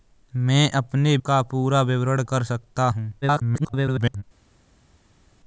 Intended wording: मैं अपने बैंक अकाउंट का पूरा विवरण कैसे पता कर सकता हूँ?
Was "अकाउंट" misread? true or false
true